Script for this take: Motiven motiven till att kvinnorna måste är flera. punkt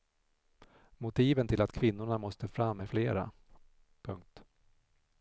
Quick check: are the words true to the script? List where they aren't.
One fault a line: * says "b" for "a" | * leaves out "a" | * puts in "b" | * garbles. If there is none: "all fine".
* leaves out "motiven"
* puts in "fram"